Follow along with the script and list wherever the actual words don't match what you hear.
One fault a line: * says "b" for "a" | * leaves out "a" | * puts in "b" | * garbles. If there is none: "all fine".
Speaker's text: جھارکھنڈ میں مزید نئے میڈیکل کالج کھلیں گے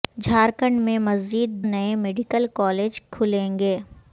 all fine